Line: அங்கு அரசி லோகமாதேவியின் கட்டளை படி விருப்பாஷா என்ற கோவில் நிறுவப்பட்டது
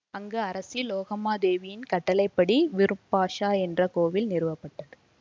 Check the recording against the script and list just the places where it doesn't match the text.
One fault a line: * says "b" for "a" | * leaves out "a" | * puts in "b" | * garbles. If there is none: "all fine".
all fine